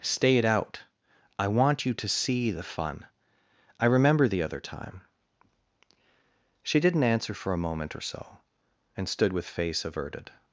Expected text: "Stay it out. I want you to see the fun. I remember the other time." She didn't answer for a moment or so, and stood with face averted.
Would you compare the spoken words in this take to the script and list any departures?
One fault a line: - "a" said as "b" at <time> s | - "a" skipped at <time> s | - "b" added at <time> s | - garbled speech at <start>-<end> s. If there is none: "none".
none